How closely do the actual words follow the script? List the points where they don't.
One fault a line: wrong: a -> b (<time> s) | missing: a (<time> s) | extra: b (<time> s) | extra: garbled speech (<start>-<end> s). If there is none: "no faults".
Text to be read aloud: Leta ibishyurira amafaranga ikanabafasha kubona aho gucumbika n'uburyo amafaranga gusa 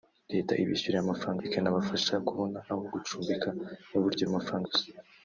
no faults